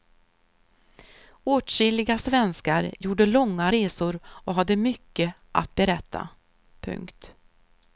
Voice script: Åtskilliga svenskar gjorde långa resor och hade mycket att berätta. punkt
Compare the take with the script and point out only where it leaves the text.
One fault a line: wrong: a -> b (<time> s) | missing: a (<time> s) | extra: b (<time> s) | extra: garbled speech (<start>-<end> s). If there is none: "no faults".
no faults